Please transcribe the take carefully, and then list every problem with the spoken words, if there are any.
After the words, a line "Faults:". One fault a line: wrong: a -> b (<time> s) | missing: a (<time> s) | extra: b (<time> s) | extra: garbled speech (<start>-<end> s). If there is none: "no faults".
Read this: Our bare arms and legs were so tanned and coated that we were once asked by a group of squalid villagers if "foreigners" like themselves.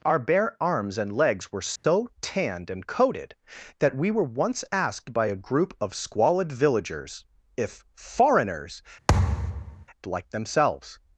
Our bare arms and legs were so tanned and coated that we were once asked by a group of squalid villagers if "foreigners" like themselves.
Faults:
no faults